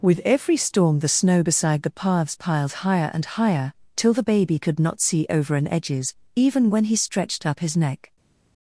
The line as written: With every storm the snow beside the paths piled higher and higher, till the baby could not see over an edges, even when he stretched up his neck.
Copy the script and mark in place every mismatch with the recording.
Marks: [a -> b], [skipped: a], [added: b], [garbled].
With every storm the snow beside the paths piled higher and higher, till the baby could not see over an edges, even when he stretched up his neck.